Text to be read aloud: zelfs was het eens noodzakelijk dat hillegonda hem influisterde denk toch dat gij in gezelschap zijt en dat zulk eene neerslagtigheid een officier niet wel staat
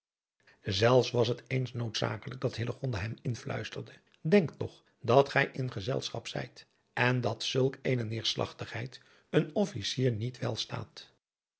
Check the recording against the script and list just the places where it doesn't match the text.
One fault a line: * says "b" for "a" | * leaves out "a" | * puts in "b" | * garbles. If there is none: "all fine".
all fine